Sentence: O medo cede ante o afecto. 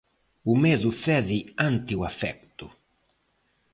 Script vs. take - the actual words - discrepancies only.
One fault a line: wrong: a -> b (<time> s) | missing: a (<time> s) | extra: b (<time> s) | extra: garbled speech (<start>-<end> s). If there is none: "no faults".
no faults